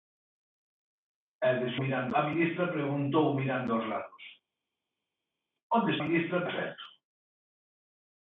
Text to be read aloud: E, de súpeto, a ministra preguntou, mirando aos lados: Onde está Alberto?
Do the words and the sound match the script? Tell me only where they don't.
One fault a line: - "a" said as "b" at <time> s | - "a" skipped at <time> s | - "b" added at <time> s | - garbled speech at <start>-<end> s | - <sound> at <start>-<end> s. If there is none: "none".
- "súpeto" said as "mirando" at 1.8 s
- "está" said as "ministra" at 6.0 s